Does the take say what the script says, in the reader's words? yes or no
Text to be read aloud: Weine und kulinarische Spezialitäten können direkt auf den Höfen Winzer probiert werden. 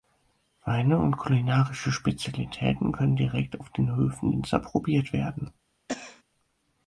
yes